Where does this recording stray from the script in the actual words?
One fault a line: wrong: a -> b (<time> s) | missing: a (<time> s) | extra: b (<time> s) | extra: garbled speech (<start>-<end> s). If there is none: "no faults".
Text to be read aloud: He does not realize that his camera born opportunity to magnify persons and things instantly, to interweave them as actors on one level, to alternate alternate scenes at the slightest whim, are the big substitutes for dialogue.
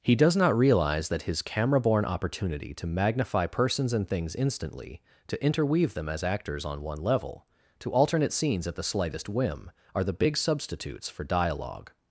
missing: alternate (8.3 s)